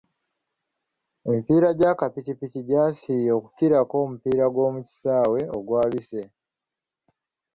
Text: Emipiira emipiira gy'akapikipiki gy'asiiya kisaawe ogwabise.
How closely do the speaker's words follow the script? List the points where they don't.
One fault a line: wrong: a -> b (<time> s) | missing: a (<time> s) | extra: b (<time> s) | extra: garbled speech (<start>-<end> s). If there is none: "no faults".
missing: emipiira (1.7 s)
extra: okukirako omupiira gw'omu (3.4 s)